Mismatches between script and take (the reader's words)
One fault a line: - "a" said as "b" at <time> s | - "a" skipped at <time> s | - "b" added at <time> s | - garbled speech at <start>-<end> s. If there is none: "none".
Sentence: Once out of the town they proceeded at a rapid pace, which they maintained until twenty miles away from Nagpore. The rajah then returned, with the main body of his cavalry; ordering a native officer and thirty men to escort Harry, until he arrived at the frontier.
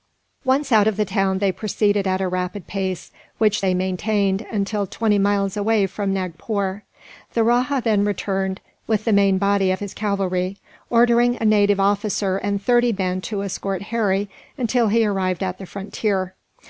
none